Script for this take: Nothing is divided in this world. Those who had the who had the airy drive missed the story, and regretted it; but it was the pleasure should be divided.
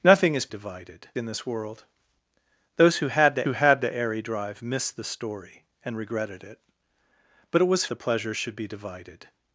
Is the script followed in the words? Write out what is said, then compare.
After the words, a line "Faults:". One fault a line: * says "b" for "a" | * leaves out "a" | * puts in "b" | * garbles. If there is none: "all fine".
Nothing is divided in this world. Those who had the who had the airy drive missed the story, and regretted it; but it was the pleasure should be divided.
Faults:
all fine